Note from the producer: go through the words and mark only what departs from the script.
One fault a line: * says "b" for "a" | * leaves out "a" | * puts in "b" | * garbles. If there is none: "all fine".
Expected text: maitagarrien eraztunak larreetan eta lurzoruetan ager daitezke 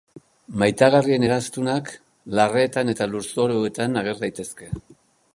all fine